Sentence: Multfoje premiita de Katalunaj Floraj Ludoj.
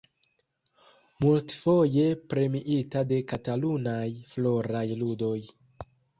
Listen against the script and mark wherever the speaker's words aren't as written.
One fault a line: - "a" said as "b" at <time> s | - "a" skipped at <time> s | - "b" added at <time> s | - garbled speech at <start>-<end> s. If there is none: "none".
none